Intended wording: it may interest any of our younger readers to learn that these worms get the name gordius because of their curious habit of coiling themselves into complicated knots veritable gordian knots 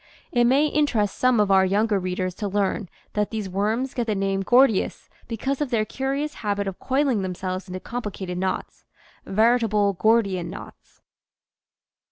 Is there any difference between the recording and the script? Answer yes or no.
yes